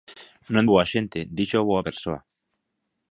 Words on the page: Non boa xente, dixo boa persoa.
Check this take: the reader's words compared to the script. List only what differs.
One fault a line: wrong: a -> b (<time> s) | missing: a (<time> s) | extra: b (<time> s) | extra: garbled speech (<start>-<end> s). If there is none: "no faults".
no faults